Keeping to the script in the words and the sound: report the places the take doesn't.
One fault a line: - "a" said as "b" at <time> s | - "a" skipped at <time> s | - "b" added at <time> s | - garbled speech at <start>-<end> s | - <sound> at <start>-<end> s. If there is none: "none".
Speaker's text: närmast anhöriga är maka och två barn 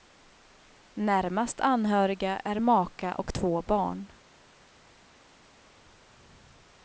none